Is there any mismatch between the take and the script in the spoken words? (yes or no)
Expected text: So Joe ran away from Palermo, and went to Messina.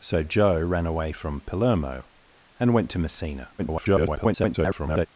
yes